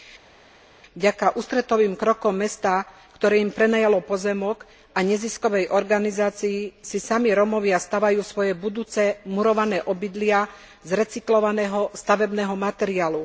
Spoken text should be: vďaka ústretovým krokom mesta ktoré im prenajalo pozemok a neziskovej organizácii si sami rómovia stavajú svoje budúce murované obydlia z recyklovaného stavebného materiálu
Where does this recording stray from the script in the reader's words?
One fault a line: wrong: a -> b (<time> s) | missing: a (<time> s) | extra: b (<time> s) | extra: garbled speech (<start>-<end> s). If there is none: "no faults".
no faults